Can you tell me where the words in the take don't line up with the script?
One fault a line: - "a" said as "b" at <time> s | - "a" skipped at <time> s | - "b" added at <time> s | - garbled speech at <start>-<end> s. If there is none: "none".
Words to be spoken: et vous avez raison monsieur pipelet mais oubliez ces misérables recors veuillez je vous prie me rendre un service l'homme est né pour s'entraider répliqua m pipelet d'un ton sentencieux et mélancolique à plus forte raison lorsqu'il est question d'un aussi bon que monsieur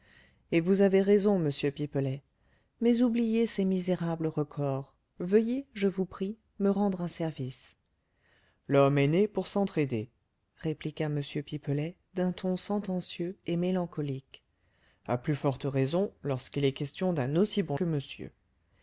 none